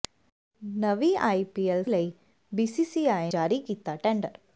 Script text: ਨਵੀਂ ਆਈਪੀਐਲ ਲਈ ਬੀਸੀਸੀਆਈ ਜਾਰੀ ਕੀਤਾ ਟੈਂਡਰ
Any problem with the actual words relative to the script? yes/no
no